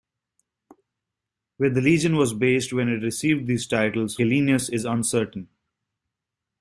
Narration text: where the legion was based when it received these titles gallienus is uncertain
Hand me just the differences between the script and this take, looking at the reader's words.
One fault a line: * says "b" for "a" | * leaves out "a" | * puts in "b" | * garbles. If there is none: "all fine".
all fine